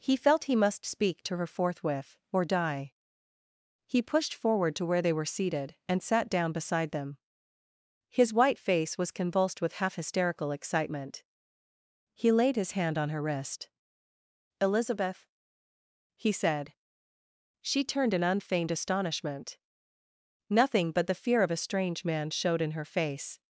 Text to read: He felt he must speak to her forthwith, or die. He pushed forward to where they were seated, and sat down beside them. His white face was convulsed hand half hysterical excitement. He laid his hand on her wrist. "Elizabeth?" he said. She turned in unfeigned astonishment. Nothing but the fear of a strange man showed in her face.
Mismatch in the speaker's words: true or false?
true